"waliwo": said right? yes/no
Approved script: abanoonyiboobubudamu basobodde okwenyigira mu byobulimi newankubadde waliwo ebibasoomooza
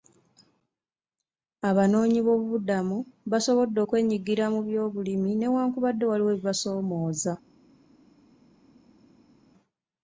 yes